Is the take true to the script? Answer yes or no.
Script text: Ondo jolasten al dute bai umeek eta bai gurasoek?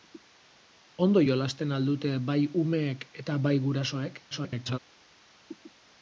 no